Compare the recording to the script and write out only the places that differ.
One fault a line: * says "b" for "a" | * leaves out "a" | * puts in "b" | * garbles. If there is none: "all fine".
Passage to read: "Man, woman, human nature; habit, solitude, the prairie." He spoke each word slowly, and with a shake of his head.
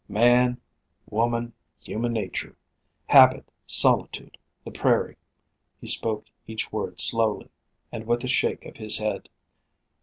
all fine